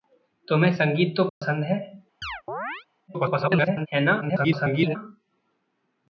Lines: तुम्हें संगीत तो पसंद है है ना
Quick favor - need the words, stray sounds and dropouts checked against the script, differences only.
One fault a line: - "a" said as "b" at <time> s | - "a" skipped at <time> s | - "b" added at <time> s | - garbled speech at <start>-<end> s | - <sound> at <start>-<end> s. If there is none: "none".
- dropout at 1.3-1.4 s
- chirp at 2.2-2.9 s
- garbled speech at 3.1-3.9 s
- garbled speech at 4.2-5.0 s